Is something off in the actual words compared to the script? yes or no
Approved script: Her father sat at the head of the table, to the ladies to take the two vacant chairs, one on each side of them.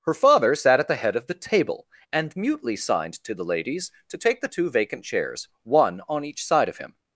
yes